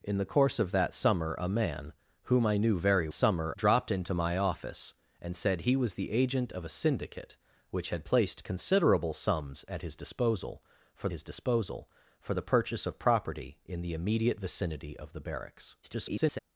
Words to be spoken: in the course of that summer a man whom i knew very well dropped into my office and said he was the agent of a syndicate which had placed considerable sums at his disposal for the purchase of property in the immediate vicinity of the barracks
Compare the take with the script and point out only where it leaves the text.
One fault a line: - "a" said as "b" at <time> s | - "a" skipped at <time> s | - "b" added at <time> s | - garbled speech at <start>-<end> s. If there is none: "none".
- "well" said as "summer" at 3.1 s
- "his disposal for" added at 11.1 s
- garbled speech at 15.8-16.4 s